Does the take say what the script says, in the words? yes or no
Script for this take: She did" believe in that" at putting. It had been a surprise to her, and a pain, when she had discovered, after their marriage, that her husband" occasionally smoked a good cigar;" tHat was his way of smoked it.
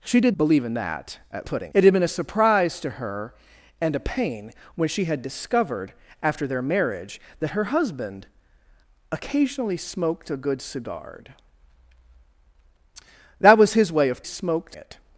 yes